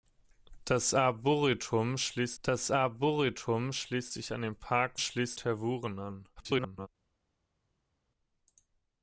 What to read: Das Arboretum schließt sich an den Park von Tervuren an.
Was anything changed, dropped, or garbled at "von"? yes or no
yes